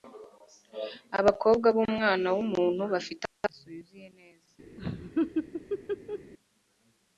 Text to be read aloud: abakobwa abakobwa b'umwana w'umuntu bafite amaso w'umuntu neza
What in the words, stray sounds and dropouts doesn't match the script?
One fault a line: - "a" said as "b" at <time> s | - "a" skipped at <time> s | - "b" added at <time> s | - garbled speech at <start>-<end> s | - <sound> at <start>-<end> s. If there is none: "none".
- "abakobwa" skipped at 1.7 s
- "w'umuntu" said as "yuzuye" at 3.8 s
- laugh at 4.8-6.3 s